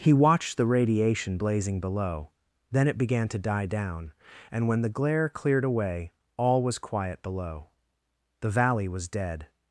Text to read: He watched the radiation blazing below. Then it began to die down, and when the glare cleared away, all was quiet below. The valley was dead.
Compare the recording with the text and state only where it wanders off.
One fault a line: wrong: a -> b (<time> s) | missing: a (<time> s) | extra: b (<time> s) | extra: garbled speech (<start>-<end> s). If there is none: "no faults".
no faults